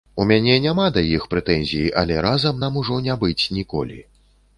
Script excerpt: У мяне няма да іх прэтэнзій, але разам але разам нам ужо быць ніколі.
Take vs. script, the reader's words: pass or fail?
fail